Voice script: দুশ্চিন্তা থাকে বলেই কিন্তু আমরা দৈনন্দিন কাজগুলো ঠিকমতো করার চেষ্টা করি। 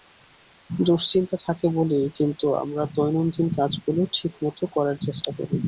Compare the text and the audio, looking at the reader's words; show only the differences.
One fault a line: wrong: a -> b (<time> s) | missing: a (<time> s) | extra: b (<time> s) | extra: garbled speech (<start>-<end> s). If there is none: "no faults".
no faults